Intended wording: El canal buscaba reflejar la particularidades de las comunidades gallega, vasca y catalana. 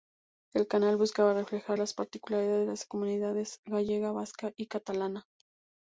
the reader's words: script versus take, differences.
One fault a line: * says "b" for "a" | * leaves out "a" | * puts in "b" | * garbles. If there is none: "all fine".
* says "las" for "la"